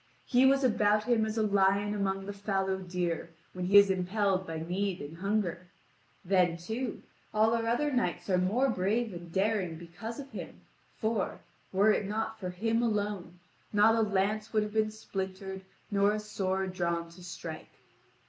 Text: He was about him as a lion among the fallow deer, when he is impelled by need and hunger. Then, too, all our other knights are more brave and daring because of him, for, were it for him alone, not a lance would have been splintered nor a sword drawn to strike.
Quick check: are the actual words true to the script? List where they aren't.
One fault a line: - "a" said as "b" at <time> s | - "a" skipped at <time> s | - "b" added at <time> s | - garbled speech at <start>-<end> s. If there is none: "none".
- "not" added at 12.1 s